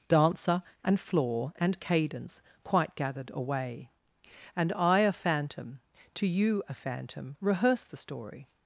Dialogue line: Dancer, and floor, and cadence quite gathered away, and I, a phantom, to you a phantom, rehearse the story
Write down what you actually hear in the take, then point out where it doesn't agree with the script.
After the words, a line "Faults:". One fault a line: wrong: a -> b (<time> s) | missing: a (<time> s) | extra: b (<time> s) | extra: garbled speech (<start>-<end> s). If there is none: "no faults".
Dancer, and floor, and cadence quite gathered away, and I, a phantom, to you a phantom, rehearse the story
Faults:
no faults